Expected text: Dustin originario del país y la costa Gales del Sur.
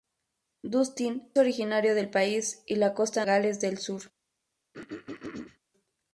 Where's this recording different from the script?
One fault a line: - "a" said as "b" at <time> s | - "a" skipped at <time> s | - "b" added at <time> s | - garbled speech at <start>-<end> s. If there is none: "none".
none